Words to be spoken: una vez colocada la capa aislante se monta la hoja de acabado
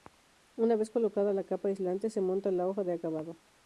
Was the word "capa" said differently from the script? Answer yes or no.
no